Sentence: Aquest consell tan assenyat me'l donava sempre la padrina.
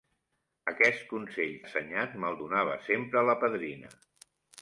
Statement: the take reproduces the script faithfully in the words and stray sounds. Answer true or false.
false